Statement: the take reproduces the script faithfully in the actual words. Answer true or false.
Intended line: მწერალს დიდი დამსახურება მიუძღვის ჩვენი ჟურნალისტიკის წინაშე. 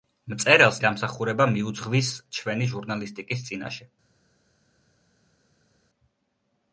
false